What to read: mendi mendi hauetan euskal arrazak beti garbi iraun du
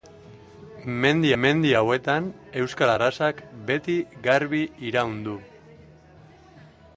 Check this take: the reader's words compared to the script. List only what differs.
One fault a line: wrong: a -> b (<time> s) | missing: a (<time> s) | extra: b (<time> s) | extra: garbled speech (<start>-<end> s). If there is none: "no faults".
no faults